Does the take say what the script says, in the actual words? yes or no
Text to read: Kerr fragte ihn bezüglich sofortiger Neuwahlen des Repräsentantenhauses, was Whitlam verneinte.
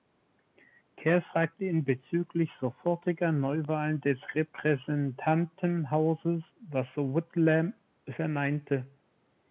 yes